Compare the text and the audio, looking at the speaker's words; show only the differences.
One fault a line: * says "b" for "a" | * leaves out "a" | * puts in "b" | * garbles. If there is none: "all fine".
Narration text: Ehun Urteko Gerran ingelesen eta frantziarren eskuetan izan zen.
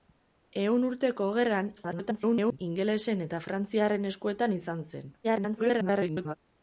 * garbles
* garbles